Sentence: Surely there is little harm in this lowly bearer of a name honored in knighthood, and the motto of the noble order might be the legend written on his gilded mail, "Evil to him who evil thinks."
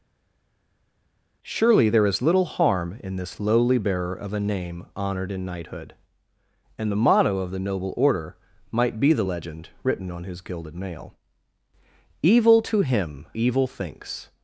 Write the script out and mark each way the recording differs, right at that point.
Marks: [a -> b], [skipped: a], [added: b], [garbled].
Surely there is little harm in this lowly bearer of a name honored in knighthood, and the motto of the noble order might be the legend written on his gilded mail, "Evil to him [skipped: who] evil thinks."